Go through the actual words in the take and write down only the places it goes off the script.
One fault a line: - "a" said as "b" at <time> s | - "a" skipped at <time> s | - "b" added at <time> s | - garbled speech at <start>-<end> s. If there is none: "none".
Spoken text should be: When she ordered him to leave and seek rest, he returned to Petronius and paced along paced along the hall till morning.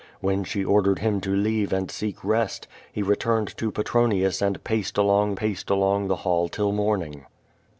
none